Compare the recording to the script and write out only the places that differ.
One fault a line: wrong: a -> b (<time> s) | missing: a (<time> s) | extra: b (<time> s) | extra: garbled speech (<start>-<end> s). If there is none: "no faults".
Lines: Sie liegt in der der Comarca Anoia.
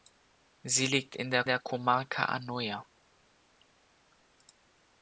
no faults